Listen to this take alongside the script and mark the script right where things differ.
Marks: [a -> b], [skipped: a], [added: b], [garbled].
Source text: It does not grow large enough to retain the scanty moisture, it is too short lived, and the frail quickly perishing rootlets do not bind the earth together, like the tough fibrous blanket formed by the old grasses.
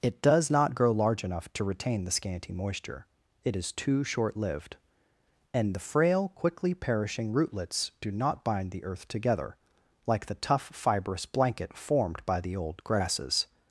It does not grow large enough to retain the scanty moisture, it is too short lived, and the frail quickly perishing rootlets do not bind the earth together, like the tough fibrous blanket formed by the old grasses.